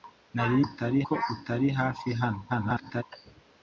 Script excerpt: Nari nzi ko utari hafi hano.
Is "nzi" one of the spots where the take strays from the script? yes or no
yes